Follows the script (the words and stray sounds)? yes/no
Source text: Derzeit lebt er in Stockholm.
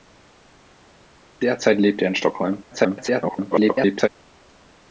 no